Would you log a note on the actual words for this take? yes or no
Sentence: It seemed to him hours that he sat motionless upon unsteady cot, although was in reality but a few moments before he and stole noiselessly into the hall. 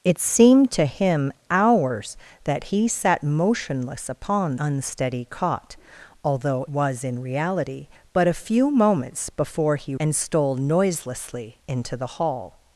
no